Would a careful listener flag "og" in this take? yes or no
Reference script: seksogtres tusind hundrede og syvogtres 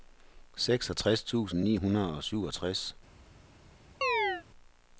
no